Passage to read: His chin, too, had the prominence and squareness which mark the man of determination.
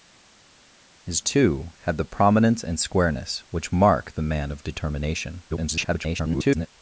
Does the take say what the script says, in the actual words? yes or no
no